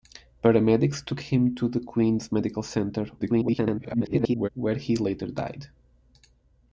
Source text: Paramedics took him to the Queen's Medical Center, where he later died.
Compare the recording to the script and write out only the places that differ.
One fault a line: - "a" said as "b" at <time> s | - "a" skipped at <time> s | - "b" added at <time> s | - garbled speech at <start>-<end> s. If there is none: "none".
- garbled speech at 3.2-4.5 s